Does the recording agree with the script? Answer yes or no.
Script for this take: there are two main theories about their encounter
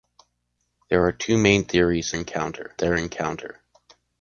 no